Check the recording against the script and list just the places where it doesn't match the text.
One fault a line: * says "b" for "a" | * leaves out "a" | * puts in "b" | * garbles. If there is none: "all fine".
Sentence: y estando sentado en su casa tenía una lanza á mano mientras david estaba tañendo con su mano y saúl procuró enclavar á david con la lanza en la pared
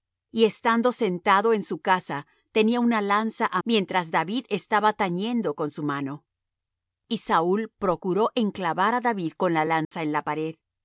* leaves out "mano"